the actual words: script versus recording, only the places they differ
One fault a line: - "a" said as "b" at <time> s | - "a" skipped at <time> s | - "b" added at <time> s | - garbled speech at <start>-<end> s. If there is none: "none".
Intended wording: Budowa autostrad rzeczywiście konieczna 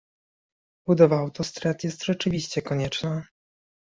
- "jest" added at 1.8 s